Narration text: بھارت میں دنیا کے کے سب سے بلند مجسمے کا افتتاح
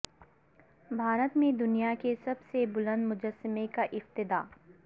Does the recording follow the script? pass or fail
fail